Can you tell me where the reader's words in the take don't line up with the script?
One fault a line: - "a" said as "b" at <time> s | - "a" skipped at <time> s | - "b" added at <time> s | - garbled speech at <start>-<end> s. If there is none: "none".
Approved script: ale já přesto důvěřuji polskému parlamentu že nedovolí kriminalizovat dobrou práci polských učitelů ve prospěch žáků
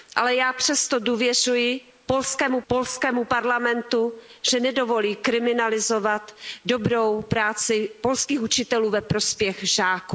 - "polskému" added at 2.7 s